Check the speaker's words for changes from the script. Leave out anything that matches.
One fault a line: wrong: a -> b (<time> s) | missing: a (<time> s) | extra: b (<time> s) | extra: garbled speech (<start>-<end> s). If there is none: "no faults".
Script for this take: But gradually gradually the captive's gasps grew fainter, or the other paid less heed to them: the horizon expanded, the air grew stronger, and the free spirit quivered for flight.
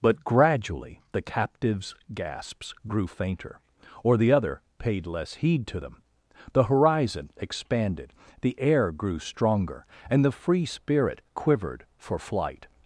missing: gradually (1.0 s)